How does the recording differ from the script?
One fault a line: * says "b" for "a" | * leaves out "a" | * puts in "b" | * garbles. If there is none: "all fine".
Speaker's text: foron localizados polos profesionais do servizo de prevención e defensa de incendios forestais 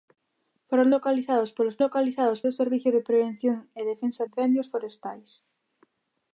* says "localizados" for "profesionais"
* leaves out "de"